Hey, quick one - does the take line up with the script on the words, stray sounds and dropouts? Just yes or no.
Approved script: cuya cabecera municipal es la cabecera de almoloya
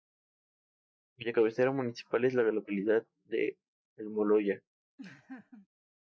no